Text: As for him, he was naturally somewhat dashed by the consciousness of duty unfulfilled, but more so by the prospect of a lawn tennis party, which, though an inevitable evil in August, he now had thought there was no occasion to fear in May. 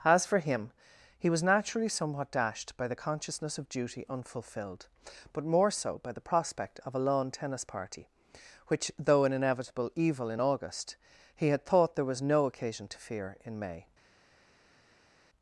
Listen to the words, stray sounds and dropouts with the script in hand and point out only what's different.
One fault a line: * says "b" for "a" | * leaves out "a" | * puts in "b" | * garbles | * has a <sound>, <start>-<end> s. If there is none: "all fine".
* leaves out "now"